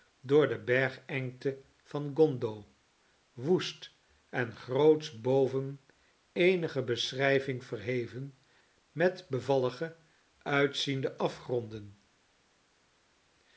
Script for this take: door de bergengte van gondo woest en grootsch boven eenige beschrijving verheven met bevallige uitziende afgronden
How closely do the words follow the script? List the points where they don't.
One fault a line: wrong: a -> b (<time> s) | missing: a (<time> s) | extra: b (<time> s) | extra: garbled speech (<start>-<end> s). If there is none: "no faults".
no faults